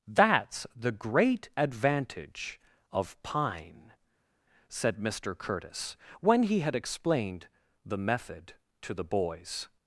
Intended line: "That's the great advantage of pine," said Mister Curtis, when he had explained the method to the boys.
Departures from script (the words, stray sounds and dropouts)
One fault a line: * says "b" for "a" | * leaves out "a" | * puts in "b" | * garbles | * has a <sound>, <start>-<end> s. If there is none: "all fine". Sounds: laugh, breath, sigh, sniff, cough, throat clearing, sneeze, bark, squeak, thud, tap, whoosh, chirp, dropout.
all fine